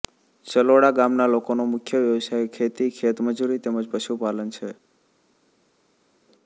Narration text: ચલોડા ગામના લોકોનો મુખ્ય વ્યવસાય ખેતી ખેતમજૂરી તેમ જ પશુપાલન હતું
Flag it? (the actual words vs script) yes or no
yes